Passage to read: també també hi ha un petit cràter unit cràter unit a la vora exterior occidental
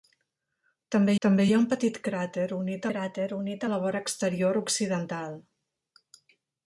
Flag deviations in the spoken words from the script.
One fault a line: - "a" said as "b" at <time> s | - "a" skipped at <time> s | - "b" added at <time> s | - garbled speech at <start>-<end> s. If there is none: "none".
none